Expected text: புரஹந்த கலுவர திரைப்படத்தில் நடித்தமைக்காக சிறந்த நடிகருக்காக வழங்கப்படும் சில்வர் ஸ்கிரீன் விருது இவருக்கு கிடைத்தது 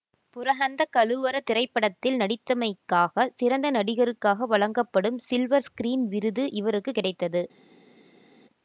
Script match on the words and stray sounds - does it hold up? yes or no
yes